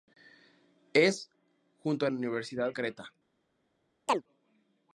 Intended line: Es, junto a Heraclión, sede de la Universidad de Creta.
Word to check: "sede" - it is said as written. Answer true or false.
false